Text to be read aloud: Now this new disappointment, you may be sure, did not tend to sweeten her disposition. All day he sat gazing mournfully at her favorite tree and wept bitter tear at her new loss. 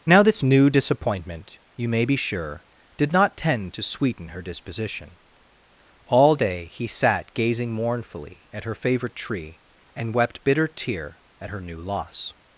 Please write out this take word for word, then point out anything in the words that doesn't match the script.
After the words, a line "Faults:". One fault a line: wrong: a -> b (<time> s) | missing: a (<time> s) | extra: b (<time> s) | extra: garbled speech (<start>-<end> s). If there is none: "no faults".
Now this new disappointment, you may be sure, did not tend to sweeten her disposition. All day he sat gazing mournfully at her favorite tree and wept bitter tear at her new loss.
Faults:
no faults